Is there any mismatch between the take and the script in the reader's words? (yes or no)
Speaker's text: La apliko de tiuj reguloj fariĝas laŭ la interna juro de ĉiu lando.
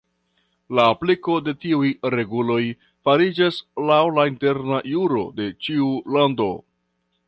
no